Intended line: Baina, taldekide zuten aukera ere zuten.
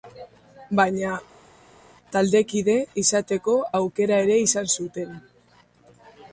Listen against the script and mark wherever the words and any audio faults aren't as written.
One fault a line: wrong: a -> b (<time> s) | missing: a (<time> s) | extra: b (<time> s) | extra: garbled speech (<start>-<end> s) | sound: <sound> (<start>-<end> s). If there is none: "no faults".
wrong: zuten -> izateko (3.0 s)
extra: izan (4.5 s)